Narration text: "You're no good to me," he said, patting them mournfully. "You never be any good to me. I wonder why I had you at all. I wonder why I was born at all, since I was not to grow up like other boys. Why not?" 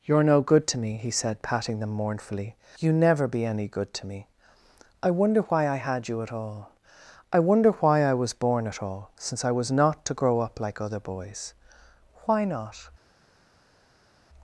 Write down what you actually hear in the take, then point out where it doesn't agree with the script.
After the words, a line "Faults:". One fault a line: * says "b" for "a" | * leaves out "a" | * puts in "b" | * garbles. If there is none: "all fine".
"You're no good to me," he said, patting them mournfully. "You never be any good to me. I wonder why I had you at all. I wonder why I was born at all, since I was not to grow up like other boys. Why not?"
Faults:
all fine